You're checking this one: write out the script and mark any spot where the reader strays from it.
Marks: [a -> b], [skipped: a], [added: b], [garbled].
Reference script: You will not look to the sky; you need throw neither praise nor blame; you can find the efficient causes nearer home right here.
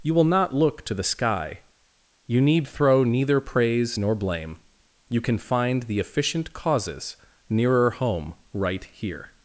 You will not look to the sky; you need throw neither praise nor blame; you can find the efficient causes nearer home right here.